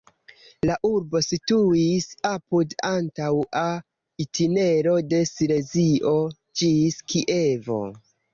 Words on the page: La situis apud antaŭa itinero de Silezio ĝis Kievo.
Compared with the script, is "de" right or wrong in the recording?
right